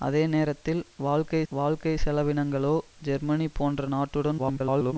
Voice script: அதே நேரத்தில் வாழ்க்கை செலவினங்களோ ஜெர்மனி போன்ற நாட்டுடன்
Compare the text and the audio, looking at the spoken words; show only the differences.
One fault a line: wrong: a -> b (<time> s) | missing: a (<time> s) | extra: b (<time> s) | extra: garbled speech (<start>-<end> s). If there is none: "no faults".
extra: வாழ்க்கை (1.5 s)
extra: garbled speech (4.4-4.9 s)